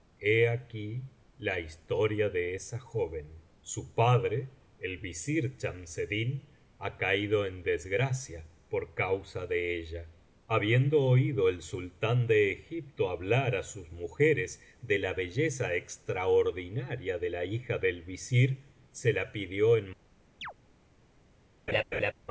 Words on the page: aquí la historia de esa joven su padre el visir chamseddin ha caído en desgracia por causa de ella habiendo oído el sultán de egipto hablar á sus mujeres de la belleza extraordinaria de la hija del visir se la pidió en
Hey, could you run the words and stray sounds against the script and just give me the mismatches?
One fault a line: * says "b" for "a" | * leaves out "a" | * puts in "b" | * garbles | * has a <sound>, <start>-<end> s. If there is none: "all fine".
* has a chirp, 20.4-20.5 s
* has a laugh, 21.7-22.1 s